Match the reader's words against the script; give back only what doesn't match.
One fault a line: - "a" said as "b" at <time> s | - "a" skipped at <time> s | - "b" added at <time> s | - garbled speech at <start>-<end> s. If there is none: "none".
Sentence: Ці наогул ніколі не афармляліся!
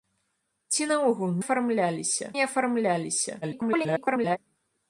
- "ніколі" said as "афармляліся" at 1.4 s
- garbled speech at 3.4-4.4 s